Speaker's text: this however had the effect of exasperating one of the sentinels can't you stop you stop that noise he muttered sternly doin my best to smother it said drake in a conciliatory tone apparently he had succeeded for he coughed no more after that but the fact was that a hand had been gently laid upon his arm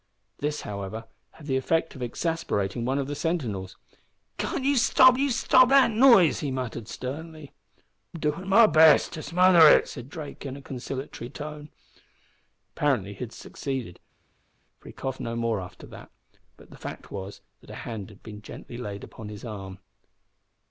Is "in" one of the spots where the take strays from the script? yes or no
no